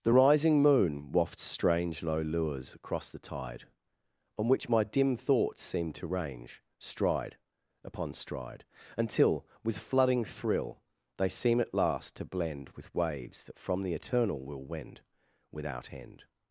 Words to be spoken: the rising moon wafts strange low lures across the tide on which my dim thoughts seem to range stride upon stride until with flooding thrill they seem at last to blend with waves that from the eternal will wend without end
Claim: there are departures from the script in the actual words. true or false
false